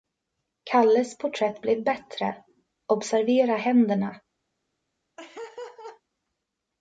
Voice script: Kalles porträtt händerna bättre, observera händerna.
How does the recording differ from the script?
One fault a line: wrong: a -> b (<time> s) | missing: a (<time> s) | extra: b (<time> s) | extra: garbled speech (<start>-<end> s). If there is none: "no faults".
wrong: händerna -> blev (1.6 s)